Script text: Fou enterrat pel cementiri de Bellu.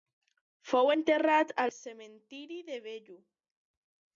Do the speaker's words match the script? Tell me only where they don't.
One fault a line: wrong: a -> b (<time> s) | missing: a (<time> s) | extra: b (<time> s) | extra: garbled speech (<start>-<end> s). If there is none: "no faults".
wrong: pel -> al (1.6 s)